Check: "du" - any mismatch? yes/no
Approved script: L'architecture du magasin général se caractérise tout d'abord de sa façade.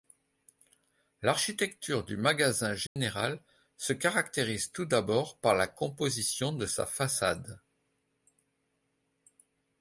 no